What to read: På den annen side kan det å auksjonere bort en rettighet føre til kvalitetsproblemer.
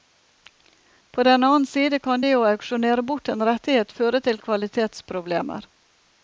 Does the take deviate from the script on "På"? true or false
false